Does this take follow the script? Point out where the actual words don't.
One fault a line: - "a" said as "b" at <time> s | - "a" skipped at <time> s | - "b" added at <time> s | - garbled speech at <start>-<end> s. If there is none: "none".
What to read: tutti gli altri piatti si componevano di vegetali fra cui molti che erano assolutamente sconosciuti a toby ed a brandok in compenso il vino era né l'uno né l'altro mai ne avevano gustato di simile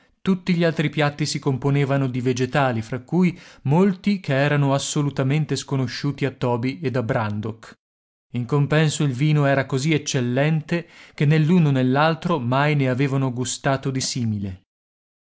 - "così eccellente che" added at 9.7 s